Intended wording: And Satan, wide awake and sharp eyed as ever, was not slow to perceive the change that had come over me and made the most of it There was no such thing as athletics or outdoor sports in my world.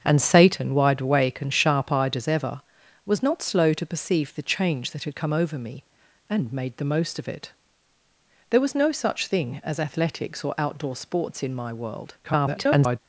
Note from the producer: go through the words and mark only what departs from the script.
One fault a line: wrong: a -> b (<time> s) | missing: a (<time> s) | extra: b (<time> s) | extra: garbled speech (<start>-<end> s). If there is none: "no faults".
extra: garbled speech (12.2-13.0 s)